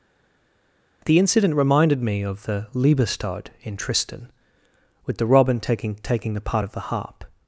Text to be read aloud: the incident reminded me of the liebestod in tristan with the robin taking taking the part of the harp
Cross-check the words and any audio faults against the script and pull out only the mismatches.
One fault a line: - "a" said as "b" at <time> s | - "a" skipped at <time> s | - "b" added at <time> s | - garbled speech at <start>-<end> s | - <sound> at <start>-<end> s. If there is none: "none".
none